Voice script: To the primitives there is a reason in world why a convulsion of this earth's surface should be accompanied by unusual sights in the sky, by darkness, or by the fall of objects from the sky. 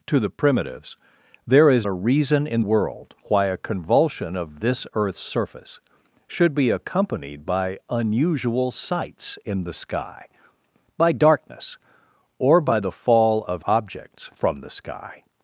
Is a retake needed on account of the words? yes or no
no